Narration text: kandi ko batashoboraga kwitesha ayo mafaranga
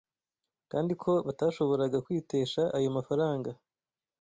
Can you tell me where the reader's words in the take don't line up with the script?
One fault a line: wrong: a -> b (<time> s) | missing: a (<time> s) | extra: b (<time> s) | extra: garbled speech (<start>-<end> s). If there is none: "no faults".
no faults